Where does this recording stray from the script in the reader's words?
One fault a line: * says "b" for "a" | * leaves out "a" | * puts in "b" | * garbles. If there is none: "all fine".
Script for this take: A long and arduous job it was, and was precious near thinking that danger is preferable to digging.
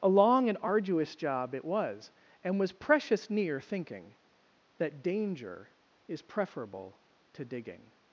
all fine